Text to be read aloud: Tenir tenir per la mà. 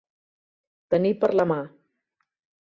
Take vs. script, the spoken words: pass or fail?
fail